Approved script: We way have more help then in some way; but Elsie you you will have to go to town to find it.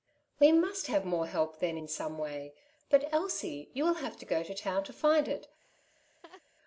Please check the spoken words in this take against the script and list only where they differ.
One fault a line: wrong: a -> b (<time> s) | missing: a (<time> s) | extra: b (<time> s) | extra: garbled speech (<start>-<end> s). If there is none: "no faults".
wrong: way -> must (0.5 s)
missing: you (3.8 s)